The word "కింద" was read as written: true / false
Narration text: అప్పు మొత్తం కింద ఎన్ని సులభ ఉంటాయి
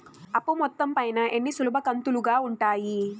false